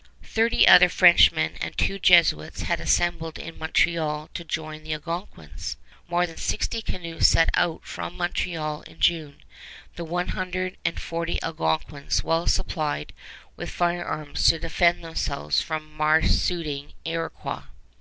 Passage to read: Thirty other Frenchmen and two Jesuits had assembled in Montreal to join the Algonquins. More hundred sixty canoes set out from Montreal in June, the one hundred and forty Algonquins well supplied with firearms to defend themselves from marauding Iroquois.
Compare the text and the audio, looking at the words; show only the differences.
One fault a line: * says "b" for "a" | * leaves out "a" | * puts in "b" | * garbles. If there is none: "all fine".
* says "than" for "hundred"